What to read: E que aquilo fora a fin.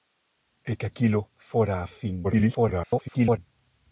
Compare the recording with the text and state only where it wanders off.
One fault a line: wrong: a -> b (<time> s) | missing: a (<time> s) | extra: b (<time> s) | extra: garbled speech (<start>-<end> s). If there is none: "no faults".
extra: garbled speech (2.2-3.4 s)